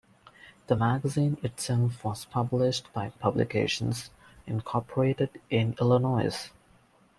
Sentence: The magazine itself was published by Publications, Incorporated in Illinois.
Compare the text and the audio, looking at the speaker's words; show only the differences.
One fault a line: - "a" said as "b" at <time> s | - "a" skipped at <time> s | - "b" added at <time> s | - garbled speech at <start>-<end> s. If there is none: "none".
none